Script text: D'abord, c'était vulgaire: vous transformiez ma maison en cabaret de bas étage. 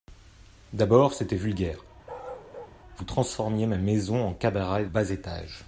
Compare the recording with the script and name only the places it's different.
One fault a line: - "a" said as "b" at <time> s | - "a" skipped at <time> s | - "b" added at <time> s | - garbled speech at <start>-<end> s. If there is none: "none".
- "de" skipped at 4.9 s